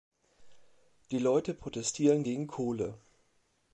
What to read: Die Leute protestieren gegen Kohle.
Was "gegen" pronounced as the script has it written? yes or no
yes